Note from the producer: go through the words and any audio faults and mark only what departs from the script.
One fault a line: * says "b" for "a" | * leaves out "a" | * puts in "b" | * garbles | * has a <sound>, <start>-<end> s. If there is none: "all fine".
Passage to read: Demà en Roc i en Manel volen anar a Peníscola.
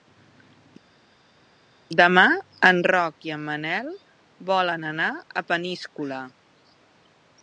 all fine